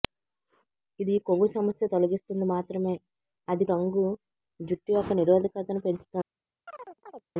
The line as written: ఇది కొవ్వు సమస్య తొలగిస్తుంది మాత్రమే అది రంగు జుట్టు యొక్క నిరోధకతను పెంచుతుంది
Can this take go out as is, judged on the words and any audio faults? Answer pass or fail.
fail